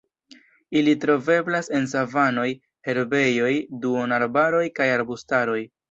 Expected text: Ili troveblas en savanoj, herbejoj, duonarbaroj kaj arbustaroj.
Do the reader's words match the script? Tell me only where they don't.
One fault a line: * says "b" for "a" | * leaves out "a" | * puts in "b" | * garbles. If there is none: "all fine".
all fine